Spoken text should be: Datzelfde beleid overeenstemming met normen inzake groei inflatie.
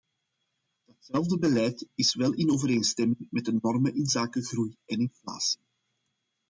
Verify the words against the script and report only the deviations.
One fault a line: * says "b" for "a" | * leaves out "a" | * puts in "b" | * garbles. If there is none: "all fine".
* puts in "is wel in"
* puts in "de"
* puts in "en"